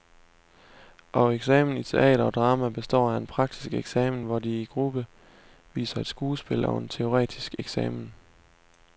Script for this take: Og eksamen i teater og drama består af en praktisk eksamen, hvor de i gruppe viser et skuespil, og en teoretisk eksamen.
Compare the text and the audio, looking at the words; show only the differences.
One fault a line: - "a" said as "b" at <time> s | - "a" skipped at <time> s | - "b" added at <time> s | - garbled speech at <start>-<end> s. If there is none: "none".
none